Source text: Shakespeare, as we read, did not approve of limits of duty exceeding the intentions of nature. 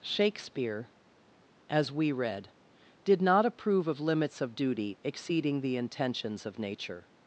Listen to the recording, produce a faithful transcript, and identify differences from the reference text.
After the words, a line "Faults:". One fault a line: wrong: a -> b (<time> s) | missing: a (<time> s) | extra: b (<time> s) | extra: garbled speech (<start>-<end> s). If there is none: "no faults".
Shakespeare, as we read, did not approve of limits of duty exceeding the intentions of nature.
Faults:
no faults